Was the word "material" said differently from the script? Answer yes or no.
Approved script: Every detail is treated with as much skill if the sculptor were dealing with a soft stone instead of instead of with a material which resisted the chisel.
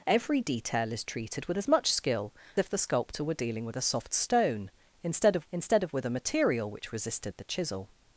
no